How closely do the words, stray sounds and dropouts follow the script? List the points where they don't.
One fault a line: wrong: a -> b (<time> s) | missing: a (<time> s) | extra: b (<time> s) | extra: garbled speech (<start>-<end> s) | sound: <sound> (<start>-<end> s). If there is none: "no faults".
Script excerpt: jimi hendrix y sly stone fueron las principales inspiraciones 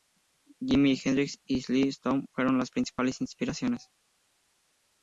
no faults